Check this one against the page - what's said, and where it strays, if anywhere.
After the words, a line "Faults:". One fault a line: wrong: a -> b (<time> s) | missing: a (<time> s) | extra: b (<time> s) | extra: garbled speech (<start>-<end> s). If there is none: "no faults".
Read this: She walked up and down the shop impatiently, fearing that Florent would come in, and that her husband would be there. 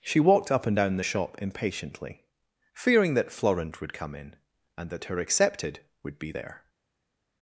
She walked up and down the shop impatiently, fearing that Florent would come in, and that her accepted would be there.
Faults:
wrong: husband -> accepted (5.2 s)